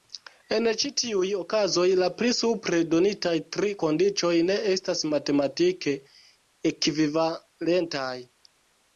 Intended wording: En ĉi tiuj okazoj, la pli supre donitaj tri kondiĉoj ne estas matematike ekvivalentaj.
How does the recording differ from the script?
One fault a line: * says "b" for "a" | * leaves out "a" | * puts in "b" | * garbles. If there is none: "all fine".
all fine